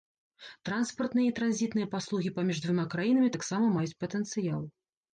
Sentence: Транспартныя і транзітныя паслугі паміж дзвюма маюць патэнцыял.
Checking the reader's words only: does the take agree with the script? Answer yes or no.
no